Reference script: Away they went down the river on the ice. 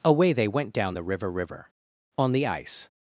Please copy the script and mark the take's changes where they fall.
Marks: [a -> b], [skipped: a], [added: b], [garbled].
Away they went down the river [added: river] on the ice.